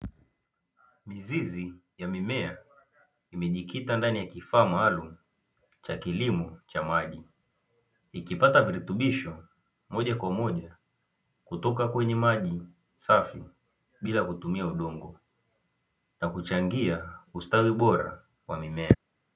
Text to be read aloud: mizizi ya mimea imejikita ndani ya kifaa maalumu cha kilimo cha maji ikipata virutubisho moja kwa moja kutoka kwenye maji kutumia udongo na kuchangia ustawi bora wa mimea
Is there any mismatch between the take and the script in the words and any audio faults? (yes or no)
yes